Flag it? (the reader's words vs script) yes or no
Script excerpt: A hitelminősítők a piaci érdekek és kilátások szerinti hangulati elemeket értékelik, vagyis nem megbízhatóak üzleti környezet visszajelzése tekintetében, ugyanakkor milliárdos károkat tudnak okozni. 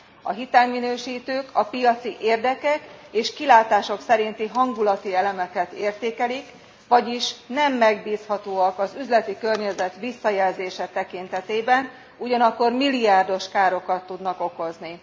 yes